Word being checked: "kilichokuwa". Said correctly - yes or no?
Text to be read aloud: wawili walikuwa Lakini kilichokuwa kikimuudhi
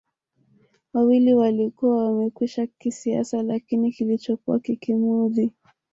yes